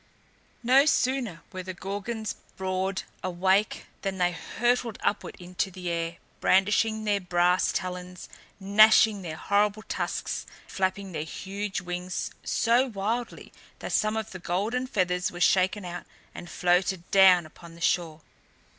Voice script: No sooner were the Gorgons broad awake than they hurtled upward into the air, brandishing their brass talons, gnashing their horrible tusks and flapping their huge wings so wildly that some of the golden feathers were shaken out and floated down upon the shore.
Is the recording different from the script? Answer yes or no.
yes